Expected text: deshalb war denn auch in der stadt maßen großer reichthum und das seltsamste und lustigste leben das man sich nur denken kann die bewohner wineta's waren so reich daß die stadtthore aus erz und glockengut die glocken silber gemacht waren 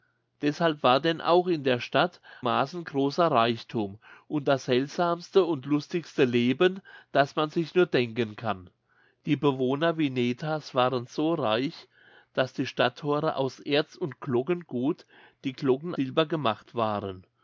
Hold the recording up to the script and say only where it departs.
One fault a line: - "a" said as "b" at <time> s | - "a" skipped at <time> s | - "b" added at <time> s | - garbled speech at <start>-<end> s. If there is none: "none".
none